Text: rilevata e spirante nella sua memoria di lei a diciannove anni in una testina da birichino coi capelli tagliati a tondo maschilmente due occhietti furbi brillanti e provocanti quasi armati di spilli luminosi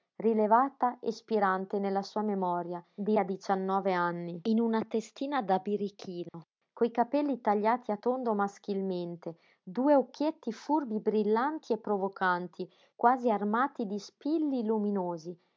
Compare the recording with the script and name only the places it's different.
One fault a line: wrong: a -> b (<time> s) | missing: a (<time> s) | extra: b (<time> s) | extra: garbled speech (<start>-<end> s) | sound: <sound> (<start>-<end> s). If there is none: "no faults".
missing: lei (3.2 s)
sound: dropout (6.3-6.3 s)